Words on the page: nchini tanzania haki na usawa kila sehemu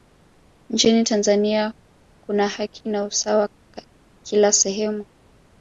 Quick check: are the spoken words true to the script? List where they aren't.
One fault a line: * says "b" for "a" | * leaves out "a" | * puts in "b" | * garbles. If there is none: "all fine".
* puts in "kuna"